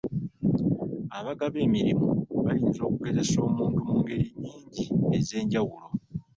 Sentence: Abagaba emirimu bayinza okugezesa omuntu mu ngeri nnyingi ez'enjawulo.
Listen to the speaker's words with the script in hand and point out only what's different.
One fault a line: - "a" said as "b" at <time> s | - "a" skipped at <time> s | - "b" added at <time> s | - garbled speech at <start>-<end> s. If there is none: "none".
none